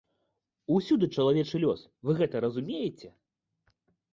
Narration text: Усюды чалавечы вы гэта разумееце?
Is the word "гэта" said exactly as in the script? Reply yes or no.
yes